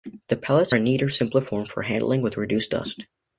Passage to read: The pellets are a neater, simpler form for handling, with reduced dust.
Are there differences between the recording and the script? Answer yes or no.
yes